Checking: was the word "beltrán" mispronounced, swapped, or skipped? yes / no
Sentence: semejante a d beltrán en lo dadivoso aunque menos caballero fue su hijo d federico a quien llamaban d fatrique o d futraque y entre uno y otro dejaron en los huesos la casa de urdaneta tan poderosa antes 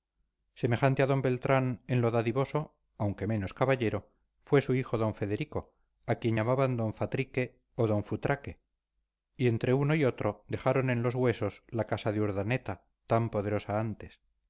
no